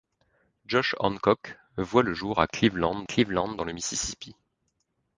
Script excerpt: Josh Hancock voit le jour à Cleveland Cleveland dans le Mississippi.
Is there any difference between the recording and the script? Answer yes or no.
no